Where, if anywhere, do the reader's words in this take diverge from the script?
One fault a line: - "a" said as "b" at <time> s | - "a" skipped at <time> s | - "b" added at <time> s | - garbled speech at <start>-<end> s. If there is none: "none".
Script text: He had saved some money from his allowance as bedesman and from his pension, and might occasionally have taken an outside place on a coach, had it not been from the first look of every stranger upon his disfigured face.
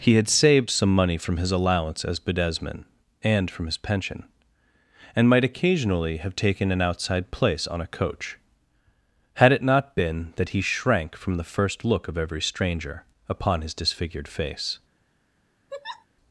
- "that he shrank" added at 10.4 s